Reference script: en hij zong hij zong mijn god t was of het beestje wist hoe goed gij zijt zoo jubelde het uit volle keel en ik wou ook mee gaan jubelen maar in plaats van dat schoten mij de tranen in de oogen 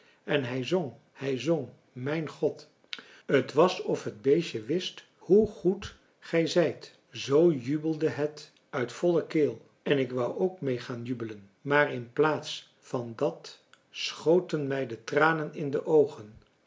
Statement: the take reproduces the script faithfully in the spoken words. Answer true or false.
true